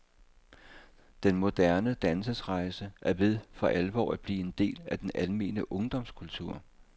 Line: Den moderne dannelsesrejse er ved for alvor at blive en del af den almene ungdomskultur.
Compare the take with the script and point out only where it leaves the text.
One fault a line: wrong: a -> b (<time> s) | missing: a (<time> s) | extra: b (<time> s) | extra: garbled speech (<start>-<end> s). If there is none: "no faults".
no faults